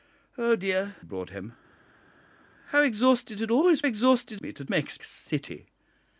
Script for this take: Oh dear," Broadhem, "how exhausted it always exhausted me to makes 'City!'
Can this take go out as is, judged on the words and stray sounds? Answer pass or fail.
pass